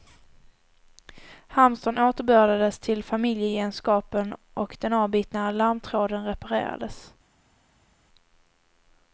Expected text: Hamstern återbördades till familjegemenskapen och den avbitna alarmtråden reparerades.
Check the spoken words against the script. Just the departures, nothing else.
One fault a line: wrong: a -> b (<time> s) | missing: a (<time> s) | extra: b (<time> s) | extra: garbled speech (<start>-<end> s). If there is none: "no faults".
no faults